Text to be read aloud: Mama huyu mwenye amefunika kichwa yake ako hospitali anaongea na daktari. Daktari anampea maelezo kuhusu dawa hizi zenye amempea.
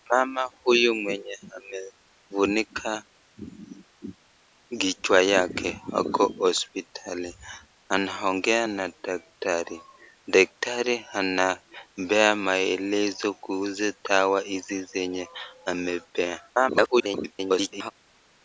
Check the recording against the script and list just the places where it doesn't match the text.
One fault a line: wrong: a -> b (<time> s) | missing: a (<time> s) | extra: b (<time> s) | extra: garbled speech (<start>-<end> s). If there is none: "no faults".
extra: garbled speech (16.5-17.9 s)